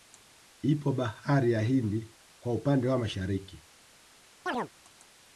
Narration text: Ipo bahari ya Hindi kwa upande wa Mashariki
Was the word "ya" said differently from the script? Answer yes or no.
no